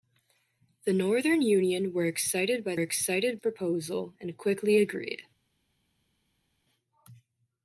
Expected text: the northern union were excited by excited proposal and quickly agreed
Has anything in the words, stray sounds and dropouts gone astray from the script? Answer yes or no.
no